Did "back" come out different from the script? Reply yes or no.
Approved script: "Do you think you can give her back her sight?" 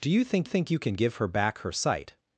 no